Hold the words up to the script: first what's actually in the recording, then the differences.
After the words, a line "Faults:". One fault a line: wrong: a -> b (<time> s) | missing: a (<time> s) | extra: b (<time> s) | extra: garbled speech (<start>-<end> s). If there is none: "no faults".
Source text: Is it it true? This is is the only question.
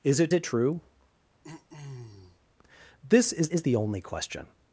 Is it it true? This is is the only question.
Faults:
no faults